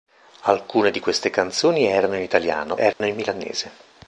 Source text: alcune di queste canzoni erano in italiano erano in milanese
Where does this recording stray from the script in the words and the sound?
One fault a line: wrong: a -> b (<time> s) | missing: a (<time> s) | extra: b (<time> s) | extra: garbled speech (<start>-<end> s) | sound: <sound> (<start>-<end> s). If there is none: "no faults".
sound: dropout (2.9-3.0 s)